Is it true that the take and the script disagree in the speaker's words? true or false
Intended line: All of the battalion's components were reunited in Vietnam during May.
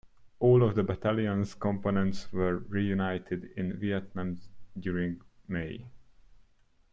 false